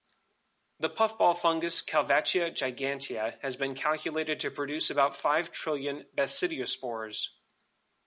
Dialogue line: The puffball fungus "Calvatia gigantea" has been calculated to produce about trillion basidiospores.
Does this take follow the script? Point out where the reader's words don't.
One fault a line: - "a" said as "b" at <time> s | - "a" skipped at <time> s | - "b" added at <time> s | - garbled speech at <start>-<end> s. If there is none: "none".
- "five" added at 5.1 s